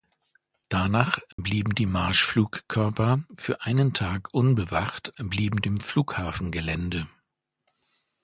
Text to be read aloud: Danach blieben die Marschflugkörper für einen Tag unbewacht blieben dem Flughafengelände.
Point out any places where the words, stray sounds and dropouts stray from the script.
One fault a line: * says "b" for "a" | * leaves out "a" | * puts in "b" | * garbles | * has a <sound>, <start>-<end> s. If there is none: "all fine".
* has a dropout, 1.3-1.4 s